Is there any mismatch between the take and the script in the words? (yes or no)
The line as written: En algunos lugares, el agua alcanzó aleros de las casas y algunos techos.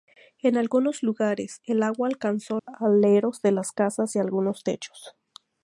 no